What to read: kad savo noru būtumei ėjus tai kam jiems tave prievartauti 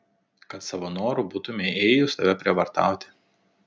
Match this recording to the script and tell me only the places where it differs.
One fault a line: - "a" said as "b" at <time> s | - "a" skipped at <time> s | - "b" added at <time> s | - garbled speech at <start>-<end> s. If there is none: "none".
- "tai kam jiems" skipped at 2.2 s